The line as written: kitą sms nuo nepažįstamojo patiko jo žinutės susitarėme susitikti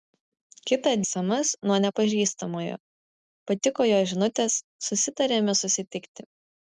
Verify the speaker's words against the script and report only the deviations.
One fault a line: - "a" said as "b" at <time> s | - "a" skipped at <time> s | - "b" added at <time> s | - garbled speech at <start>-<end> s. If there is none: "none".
none